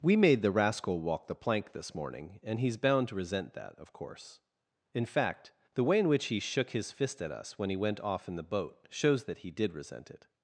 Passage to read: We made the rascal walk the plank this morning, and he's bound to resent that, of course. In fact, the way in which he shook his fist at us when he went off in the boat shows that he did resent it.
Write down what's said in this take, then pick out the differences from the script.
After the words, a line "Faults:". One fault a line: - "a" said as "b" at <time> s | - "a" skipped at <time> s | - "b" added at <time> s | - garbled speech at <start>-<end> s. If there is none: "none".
We made the rascal walk the plank this morning, and he's bound to resent that, of course. In fact, the way in which he shook his fist at us when he went off in the boat shows that he did resent it.
Faults:
none